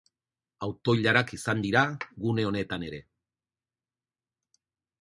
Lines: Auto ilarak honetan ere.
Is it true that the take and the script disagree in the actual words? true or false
true